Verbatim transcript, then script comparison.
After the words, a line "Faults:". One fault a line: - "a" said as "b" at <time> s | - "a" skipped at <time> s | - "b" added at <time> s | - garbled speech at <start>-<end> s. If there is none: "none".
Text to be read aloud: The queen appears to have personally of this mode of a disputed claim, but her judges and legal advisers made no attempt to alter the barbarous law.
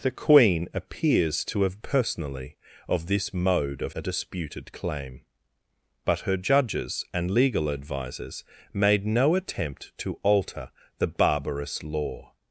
The queen appears to have personally of this mode of a disputed claim, but her judges and legal advisers made no attempt to alter the barbarous law.
Faults:
none